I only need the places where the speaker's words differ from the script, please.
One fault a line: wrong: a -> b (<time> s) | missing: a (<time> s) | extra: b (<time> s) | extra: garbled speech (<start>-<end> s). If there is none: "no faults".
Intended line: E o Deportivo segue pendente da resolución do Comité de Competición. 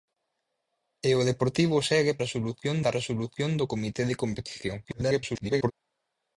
wrong: pendente -> resolución (2.2 s)
extra: garbled speech (4.8-5.7 s)